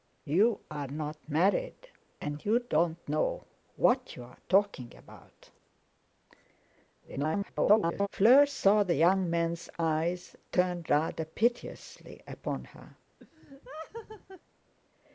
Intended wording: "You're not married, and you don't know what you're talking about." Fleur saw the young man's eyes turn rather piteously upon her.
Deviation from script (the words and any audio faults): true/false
true